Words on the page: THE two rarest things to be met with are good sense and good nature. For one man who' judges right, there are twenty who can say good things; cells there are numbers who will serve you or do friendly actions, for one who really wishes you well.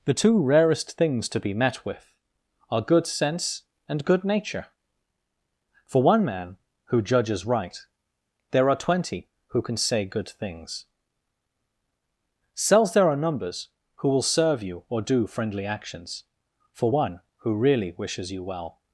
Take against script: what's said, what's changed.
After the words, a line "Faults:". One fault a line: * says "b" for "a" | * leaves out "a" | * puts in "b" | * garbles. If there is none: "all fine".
THE two rarest things to be met with are good sense and good nature. For one man who' judges right, there are twenty who can say good things; cells there are numbers who will serve you or do friendly actions, for one who really wishes you well.
Faults:
all fine